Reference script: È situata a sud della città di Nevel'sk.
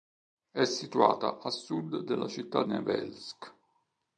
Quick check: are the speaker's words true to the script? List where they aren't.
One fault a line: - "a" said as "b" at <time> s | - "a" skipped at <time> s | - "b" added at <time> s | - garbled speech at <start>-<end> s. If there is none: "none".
- "di" skipped at 2.6 s